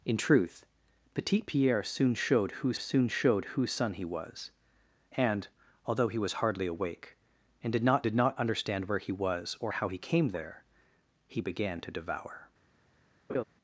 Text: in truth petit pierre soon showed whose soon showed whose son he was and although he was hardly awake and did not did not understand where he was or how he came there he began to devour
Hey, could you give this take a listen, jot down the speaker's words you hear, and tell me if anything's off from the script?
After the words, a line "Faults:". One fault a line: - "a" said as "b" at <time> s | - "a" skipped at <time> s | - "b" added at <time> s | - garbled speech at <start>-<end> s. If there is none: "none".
in truth petit pierre soon showed whose soon showed whose son he was and although he was hardly awake and did not did not understand where he was or how he came there he began to devour
Faults:
none